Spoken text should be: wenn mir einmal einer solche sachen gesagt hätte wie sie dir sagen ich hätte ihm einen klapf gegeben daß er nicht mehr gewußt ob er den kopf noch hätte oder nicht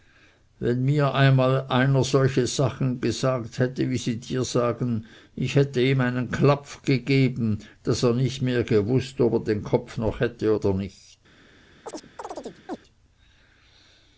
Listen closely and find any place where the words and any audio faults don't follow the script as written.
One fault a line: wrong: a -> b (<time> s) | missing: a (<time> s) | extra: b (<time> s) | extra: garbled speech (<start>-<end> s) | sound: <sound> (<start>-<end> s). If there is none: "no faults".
sound: chirp (11.8-12.8 s)